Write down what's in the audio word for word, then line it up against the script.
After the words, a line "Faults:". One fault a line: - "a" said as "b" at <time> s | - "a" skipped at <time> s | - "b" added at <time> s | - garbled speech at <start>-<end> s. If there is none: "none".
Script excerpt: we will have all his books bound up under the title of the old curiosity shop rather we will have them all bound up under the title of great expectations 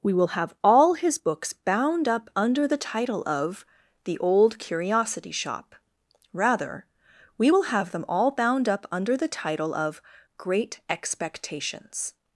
we will have all his books bound up under the title of the old curiosity shop rather we will have them all bound up under the title of great expectations
Faults:
none